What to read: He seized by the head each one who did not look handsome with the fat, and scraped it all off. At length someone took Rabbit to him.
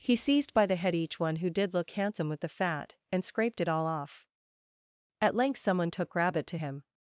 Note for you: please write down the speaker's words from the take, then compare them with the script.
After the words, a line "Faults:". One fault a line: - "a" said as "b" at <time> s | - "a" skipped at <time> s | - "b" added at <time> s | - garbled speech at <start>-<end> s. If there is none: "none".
He seized by the head each one who did look handsome with the fat, and scraped it all off. At length someone took Rabbit to him.
Faults:
- "not" skipped at 1.7 s